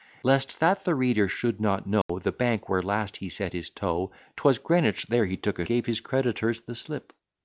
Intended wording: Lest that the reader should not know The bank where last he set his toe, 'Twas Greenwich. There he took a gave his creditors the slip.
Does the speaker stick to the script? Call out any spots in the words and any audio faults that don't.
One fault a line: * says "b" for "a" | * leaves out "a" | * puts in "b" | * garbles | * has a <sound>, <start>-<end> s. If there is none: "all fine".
* has a dropout, 2.0-2.1 s